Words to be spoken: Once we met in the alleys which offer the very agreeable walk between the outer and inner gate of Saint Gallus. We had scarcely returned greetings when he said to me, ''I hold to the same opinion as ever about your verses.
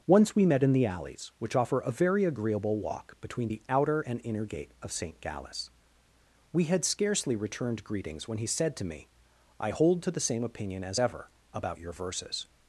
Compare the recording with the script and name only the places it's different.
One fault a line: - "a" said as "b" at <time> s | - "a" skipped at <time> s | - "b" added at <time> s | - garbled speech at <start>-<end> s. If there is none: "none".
- "the" said as "a" at 1.8 s